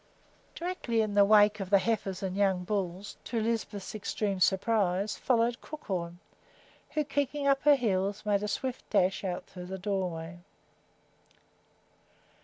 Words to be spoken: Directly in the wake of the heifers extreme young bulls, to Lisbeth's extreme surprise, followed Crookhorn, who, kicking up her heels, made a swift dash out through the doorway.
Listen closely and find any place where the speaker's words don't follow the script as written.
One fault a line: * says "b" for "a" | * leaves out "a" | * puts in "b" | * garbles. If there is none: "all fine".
* says "and" for "extreme"